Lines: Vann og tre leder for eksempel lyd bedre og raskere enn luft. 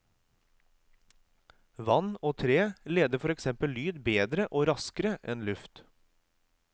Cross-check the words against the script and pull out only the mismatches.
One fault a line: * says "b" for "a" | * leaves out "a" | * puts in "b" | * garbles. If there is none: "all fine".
all fine